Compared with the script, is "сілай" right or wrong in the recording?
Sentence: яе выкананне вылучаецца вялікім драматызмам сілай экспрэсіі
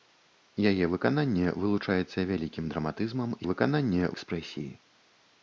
wrong